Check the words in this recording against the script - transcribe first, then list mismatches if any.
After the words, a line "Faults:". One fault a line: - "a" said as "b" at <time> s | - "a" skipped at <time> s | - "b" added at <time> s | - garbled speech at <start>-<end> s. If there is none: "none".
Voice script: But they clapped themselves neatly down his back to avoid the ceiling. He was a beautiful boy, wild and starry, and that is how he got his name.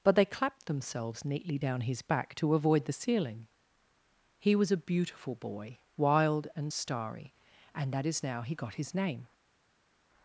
But they clapped themselves neatly down his back to avoid the ceiling. He was a beautiful boy, wild and starry, and that is now he got his name.
Faults:
- "how" said as "now" at 8.2 s